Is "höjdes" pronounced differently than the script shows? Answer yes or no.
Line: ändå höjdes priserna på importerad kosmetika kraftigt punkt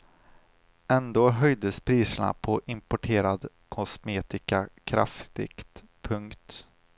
no